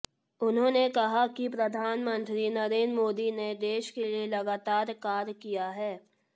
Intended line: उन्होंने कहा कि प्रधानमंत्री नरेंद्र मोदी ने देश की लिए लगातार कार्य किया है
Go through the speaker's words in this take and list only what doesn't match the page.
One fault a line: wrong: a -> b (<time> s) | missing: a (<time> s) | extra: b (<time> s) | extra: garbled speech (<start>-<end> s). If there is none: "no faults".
wrong: की -> के (3.9 s)